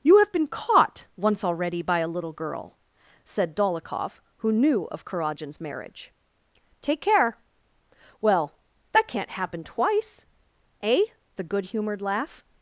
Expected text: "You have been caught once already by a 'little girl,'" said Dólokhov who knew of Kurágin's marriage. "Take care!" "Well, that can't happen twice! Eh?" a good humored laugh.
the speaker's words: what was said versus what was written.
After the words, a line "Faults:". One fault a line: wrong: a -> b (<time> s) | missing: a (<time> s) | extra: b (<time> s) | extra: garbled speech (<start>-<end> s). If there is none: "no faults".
"You have been caught once already by a 'little girl,'" said Dólokhov who knew of Kurágin's marriage. "Take care!" "Well, that can't happen twice! Eh?" a good humored laugh.
Faults:
no faults